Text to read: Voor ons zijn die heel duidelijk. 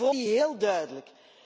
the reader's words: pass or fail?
fail